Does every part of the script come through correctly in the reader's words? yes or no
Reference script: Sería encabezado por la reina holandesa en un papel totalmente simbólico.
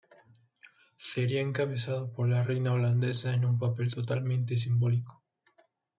yes